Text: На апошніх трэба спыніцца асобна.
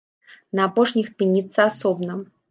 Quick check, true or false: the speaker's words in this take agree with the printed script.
false